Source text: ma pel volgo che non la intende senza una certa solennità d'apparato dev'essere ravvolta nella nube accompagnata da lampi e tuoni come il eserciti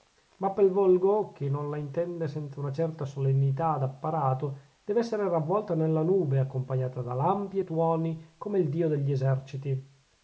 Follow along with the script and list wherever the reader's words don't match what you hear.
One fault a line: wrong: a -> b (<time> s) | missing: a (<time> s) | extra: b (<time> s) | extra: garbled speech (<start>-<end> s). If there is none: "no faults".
extra: dio degli (8.7 s)